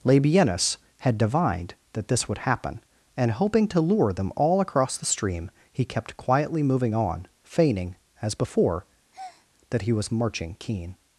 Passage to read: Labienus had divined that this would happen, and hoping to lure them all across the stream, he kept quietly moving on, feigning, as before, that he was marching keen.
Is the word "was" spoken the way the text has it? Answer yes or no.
yes